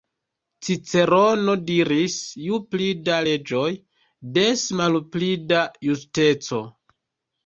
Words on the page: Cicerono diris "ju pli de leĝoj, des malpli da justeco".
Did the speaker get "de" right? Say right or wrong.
wrong